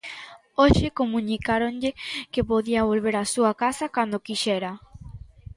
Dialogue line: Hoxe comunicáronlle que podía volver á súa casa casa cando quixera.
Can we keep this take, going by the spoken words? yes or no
no